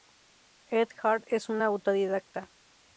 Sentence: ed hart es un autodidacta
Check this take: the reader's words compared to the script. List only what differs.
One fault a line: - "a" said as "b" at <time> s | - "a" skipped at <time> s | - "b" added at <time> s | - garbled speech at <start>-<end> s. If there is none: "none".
none